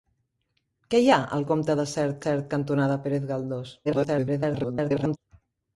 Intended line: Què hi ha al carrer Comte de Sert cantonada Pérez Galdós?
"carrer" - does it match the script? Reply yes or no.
no